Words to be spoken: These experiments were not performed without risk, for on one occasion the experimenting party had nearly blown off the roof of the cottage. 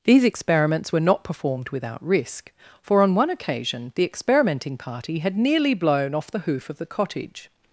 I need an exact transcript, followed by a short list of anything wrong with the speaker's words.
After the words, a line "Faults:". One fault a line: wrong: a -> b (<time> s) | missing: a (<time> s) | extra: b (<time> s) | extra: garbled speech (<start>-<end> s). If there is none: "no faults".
These experiments were not performed without risk, for on one occasion the experimenting party had nearly blown off the hoof of the cottage.
Faults:
wrong: roof -> hoof (6.4 s)